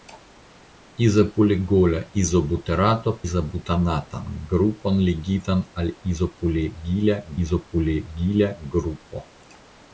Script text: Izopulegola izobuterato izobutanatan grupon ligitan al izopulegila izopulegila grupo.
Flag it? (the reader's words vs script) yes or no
no